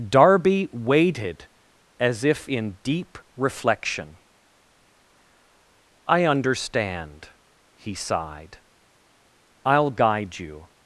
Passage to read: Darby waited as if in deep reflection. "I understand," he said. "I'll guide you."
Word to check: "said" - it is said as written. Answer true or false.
false